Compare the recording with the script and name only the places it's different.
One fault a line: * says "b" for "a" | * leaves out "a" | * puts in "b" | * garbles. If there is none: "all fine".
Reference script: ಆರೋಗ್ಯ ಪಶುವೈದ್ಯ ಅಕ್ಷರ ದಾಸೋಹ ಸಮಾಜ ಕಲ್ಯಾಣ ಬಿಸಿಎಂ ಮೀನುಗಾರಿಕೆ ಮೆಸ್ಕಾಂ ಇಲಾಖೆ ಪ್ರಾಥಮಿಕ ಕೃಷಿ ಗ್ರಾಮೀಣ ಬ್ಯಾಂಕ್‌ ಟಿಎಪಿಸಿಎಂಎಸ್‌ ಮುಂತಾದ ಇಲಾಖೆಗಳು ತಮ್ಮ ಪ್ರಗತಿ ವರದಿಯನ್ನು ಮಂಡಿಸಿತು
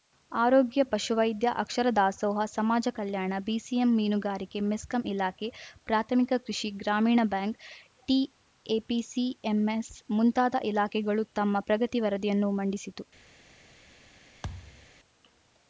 all fine